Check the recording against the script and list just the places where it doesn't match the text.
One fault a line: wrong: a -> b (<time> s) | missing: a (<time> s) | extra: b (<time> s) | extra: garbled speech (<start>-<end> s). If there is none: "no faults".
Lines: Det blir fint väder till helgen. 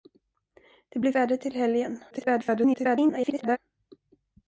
missing: fint (1.1 s)
extra: garbled speech (2.1-3.6 s)